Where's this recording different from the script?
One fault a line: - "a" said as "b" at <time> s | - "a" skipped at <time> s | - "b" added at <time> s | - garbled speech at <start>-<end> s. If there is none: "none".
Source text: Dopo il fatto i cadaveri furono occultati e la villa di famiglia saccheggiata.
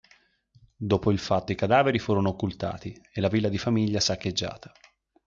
none